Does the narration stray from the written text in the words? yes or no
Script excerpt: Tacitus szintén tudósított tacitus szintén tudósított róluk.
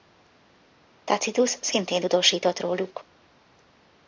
yes